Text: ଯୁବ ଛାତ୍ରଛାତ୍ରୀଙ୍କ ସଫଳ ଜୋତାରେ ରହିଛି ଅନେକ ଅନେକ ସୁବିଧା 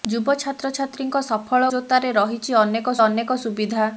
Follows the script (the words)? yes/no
yes